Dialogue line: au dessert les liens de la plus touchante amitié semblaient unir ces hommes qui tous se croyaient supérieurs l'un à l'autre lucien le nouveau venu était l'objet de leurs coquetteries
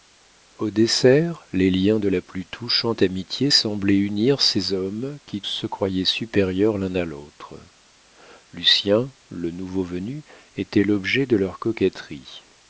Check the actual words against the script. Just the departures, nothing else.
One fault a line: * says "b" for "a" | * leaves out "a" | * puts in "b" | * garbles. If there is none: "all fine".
* leaves out "tous"